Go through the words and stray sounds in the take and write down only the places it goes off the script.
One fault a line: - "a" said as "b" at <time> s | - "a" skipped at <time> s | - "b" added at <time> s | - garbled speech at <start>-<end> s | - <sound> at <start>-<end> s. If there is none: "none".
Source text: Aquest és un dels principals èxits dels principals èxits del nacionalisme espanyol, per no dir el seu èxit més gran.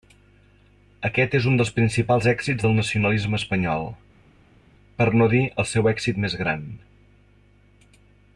- "dels principals èxits" skipped at 2.7 s